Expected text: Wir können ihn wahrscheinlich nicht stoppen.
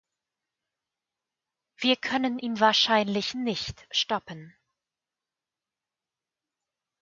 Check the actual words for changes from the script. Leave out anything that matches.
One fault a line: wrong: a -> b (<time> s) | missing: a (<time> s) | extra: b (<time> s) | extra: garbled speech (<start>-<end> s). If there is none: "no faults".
no faults